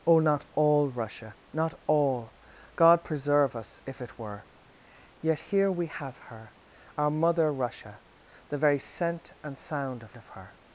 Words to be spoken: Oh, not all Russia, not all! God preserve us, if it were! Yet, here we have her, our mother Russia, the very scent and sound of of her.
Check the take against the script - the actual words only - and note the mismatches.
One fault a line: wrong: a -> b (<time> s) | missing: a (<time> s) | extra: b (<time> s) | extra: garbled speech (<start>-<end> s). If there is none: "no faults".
no faults